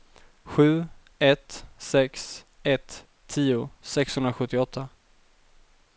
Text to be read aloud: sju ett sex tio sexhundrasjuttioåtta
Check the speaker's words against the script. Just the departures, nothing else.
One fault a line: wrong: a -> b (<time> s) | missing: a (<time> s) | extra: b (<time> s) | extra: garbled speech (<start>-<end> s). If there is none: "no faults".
extra: ett (2.6 s)